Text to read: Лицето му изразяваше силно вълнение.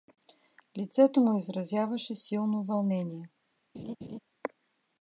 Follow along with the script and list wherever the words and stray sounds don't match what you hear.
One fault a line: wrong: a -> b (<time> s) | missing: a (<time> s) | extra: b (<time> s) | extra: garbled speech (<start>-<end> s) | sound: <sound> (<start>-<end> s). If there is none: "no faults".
sound: laugh (3.7-4.2 s)